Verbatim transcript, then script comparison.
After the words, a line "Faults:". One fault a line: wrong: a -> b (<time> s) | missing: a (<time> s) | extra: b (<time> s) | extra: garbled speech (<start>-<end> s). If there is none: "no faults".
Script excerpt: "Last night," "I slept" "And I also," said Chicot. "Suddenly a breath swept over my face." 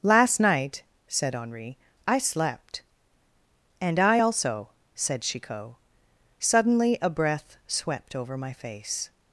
"Last night," said Henri, "I slept" "And I also," said Chicot. "Suddenly a breath swept over my face."
Faults:
extra: said Henri (1.1 s)